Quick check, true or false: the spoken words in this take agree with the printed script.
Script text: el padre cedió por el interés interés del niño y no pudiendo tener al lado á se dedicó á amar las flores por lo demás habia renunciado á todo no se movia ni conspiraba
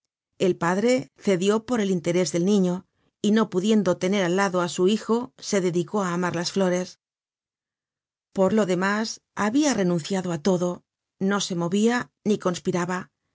false